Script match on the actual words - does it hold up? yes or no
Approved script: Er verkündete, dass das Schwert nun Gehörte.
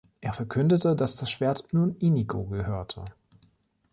no